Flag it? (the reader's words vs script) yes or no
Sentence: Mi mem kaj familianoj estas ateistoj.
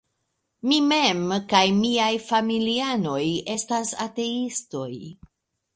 yes